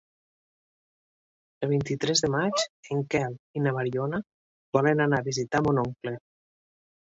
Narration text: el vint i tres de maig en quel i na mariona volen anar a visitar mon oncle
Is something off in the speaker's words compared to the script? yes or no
no